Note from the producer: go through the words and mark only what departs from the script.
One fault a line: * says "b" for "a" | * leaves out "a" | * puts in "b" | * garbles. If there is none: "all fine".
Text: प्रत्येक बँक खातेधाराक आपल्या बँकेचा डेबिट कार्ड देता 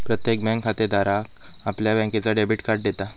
all fine